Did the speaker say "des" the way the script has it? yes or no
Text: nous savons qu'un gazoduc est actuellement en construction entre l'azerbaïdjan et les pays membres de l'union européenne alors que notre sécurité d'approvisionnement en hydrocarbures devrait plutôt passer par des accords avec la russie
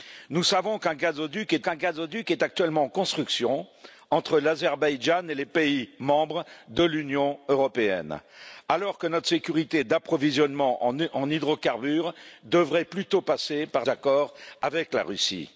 no